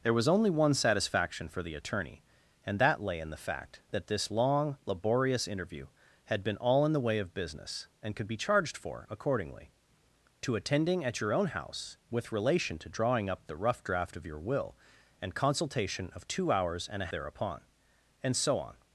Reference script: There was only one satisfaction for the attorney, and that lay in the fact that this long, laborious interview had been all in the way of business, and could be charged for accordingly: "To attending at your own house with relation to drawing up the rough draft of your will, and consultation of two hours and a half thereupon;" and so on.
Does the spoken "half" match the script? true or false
false